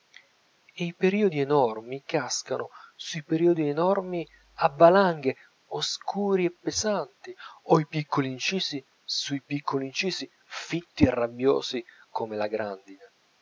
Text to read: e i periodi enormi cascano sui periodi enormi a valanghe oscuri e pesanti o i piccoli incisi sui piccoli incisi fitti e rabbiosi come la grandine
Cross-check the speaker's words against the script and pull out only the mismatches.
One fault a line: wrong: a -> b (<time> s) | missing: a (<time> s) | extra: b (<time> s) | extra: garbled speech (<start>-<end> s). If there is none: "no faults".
no faults